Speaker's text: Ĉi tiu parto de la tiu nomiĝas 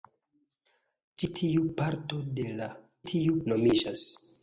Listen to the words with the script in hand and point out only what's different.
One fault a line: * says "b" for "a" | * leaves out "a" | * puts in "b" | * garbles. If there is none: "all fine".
all fine